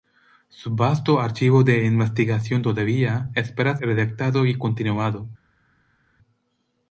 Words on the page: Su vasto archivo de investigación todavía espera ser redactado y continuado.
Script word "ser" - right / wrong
wrong